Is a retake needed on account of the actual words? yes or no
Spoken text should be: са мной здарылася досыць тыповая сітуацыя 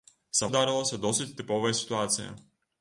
yes